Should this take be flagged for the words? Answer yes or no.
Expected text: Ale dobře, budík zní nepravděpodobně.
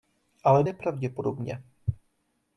yes